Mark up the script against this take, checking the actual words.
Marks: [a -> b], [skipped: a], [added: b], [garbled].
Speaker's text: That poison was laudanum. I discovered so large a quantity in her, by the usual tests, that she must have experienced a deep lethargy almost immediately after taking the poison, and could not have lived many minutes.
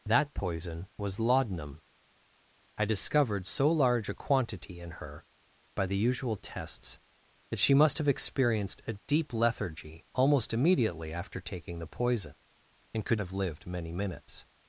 That poison was laudanum. I discovered so large a quantity in her, by the usual tests, that she must have experienced a deep lethargy almost immediately after taking the poison, and could [skipped: not] have lived many minutes.